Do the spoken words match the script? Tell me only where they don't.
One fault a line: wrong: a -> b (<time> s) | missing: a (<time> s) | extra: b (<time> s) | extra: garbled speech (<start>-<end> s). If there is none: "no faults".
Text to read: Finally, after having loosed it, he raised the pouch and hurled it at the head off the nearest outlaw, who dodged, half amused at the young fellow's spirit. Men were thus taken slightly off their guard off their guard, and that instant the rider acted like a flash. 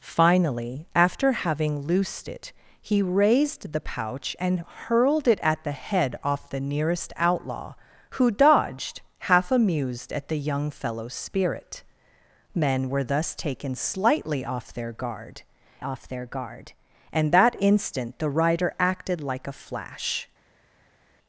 no faults